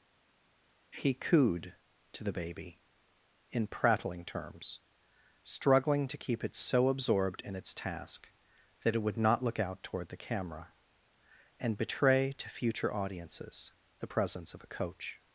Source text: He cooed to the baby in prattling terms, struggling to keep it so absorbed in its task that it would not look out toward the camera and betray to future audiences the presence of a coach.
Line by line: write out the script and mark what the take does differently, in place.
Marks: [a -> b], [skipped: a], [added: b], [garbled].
He cooed to the baby in prattling terms, struggling to keep it so absorbed in its task that it would not look out toward the camera and betray to future audiences the presence of a coach.